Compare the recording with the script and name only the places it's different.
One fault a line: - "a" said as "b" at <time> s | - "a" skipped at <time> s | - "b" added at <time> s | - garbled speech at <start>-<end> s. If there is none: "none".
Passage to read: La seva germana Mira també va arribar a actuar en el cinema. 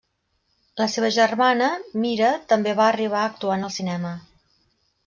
none